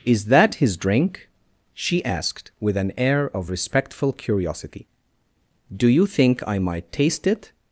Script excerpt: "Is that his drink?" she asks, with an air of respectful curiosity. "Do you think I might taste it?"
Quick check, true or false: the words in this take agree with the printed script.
false